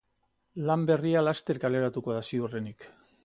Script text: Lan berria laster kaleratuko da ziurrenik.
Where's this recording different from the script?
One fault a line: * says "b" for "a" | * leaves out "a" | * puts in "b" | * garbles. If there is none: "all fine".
all fine